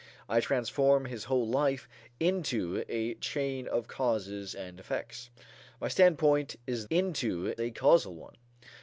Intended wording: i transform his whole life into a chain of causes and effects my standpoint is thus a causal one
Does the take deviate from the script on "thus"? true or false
true